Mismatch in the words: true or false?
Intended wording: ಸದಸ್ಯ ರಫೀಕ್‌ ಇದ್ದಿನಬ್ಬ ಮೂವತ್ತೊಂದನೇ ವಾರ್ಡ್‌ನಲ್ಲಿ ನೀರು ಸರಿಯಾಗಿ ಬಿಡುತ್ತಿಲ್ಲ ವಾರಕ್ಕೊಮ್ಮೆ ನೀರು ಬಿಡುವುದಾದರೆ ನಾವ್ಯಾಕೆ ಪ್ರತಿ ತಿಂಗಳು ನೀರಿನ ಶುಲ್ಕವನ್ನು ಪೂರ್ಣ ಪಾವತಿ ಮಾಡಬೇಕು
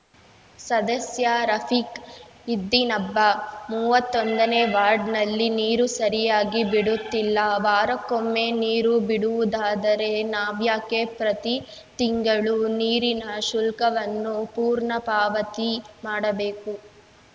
false